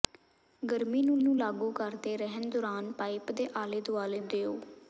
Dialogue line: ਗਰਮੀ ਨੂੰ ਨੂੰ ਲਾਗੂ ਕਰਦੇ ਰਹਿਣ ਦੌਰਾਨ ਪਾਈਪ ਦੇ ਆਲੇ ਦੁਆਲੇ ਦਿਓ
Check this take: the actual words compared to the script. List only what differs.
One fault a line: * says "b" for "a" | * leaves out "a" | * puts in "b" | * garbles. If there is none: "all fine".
all fine